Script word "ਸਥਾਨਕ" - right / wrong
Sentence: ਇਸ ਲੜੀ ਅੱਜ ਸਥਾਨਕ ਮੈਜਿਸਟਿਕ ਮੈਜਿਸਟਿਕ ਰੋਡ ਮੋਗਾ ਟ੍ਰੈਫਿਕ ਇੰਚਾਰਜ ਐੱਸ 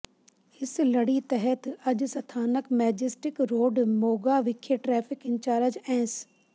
right